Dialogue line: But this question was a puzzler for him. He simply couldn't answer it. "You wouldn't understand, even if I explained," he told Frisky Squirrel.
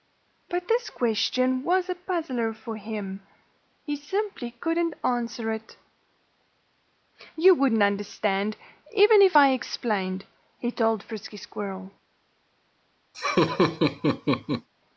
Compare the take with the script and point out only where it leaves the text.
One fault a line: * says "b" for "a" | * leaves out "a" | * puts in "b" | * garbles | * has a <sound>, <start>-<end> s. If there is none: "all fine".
* has a laugh, 13.1-14.7 s